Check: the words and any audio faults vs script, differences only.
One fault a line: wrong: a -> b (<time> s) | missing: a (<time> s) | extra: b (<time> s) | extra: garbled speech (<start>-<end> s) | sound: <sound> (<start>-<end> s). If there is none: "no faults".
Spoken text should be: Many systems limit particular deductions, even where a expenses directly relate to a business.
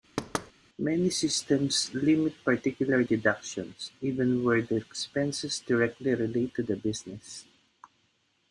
sound: thud (0.2-0.5 s)
wrong: a -> the (4.6 s)
wrong: a -> the (6.6 s)